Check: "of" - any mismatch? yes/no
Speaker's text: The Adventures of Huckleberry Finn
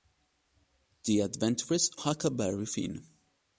yes